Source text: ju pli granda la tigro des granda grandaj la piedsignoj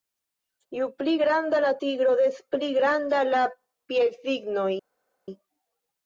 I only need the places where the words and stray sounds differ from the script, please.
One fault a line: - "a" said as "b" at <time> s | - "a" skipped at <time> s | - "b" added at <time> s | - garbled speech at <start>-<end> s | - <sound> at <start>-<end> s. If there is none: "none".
- "granda" said as "pli" at 2.6 s